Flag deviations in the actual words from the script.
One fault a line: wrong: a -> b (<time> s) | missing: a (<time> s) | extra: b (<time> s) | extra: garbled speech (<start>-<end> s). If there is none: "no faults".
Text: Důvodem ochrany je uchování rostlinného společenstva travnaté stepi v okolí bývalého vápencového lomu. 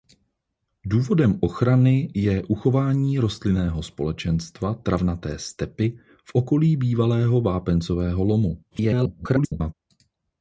extra: garbled speech (8.7-9.7 s)